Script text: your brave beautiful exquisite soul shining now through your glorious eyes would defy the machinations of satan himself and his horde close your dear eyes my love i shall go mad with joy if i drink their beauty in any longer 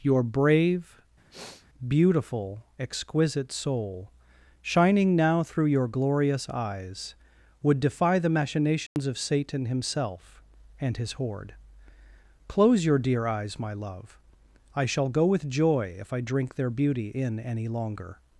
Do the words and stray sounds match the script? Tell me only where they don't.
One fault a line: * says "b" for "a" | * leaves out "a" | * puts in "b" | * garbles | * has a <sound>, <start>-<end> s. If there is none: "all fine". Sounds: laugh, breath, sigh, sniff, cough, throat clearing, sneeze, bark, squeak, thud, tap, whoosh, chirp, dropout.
* has a sniff, 1.3-1.7 s
* has a dropout, 8.9-9.0 s
* leaves out "mad"